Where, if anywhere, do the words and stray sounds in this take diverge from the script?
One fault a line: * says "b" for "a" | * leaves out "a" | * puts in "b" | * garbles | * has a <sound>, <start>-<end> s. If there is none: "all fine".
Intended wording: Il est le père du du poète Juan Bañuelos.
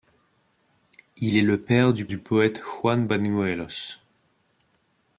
all fine